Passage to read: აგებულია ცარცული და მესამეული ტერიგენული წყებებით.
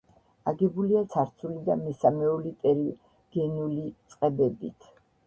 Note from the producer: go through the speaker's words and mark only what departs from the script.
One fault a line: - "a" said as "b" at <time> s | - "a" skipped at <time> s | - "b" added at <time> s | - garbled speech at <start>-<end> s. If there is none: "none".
none